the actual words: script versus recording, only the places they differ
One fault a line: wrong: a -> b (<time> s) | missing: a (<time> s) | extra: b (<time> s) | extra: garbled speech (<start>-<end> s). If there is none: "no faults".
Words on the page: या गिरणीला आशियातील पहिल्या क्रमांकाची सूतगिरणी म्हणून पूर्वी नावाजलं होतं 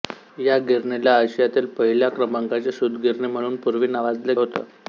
no faults